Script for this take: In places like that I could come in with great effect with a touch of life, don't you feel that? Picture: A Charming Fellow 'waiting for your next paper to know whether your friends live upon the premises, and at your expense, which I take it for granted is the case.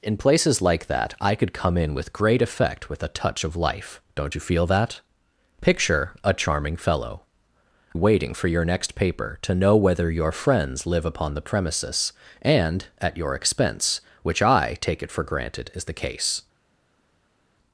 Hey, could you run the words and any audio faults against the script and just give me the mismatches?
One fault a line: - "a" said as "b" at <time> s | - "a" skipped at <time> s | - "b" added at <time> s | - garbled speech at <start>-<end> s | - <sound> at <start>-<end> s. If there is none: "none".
none